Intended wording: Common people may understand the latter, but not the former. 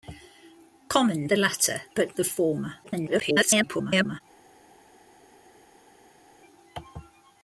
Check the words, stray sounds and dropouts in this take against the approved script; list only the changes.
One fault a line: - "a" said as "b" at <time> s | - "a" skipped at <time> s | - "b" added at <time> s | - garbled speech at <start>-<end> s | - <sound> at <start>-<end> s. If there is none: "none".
- "people may understand" skipped at 1.3 s
- "not" skipped at 2.2 s
- garbled speech at 2.8-4.2 s